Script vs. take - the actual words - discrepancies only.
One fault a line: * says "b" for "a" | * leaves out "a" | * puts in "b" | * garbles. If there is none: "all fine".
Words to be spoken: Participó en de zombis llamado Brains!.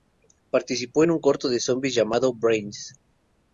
* puts in "un corto"